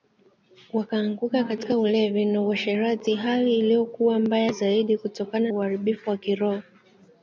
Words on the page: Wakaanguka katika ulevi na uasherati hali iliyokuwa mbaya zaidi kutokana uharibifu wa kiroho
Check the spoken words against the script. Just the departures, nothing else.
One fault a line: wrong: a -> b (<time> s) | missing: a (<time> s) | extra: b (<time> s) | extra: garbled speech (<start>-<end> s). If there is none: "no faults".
no faults